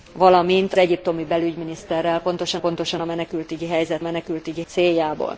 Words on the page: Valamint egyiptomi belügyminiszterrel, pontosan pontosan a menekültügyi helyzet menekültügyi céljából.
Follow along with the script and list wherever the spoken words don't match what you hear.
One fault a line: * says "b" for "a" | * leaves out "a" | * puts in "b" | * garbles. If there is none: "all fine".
all fine